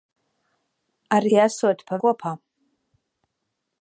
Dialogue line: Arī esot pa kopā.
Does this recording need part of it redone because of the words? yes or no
no